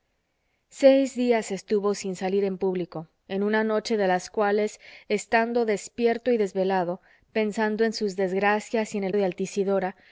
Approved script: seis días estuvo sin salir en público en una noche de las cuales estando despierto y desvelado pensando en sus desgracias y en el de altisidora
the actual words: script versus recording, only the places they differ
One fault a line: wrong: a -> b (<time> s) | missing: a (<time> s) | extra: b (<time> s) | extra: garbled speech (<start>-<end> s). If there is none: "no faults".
no faults